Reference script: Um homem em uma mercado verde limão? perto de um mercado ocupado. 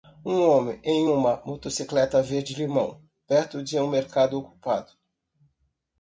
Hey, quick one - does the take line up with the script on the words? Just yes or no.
no